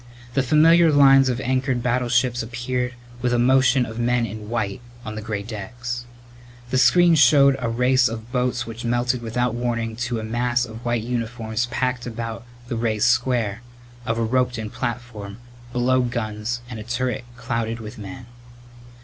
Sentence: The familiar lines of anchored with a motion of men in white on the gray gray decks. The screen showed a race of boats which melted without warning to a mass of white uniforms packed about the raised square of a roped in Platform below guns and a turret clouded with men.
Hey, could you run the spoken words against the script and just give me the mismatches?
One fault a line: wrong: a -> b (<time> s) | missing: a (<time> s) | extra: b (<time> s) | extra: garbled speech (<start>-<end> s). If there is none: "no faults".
extra: battleships appeared (1.8 s)
missing: gray (5.4 s)